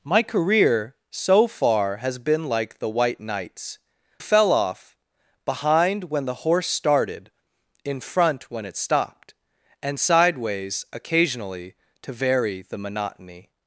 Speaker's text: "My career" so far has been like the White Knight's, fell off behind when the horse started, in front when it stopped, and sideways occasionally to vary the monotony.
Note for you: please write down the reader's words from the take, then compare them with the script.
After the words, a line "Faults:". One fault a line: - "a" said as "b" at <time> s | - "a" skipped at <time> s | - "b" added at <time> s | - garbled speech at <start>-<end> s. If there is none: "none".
"My career" so far has been like the White Knight's, fell off behind when the horse started, in front when it stopped, and sideways occasionally to vary the monotony.
Faults:
none